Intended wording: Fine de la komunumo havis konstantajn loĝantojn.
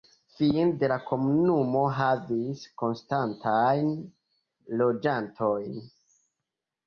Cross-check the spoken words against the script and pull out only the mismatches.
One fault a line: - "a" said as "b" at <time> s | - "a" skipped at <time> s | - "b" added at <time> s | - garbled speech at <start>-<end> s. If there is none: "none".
none